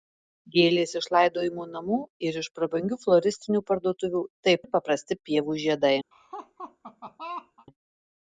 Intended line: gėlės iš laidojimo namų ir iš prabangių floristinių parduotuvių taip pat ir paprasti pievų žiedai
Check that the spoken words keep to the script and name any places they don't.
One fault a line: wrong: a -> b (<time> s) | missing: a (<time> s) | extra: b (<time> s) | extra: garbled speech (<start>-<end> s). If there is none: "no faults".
missing: pat (4.7 s)